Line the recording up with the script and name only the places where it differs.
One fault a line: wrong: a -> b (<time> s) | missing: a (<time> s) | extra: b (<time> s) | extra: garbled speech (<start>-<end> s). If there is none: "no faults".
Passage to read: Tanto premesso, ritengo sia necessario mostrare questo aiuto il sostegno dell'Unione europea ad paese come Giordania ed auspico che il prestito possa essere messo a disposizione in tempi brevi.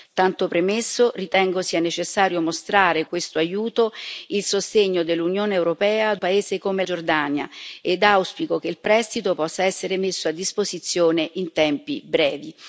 no faults